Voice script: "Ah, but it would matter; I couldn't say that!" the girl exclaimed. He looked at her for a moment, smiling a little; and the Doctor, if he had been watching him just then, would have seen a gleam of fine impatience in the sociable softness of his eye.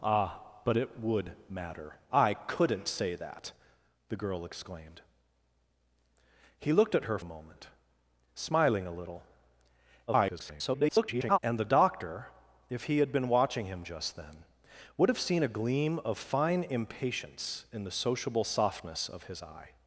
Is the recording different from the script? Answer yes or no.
yes